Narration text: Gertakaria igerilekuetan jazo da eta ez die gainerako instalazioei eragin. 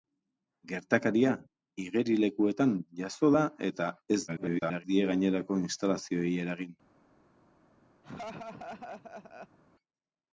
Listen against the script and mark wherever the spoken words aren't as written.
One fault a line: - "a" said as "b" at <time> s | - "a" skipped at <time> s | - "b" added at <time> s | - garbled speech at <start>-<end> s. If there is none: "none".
- garbled speech at 4.3-4.8 s